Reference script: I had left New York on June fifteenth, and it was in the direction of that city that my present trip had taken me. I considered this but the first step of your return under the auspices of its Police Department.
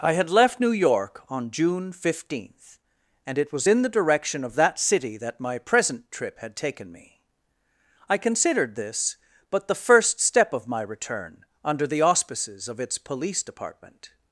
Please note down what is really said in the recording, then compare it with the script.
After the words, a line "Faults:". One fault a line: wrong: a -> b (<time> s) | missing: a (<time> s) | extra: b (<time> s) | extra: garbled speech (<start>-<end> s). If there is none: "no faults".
I had left New York on June fifteenth, and it was in the direction of that city that my present trip had taken me. I considered this but the first step of my return under the auspices of its Police Department.
Faults:
wrong: your -> my (10.7 s)